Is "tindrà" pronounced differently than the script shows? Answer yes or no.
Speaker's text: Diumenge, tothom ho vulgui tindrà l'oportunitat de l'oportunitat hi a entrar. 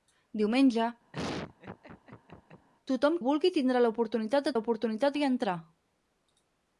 no